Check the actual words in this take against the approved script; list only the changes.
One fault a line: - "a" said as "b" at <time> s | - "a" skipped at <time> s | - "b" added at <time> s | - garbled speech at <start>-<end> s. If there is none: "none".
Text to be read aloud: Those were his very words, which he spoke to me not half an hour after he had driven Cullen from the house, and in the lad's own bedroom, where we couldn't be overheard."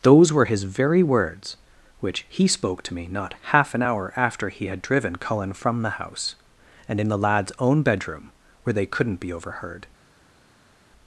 - "we" said as "they" at 8.7 s